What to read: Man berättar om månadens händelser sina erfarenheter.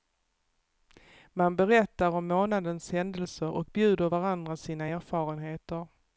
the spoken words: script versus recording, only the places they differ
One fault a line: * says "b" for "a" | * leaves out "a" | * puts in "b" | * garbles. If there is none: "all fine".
* puts in "och bjuder varandra"